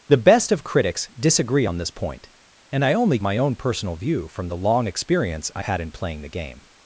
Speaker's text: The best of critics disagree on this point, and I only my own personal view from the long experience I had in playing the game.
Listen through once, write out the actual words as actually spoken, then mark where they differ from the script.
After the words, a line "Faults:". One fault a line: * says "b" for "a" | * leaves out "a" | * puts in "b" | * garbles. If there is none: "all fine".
The best of critics disagree on this point, and I only my own personal view from the long experience I had in playing the game.
Faults:
all fine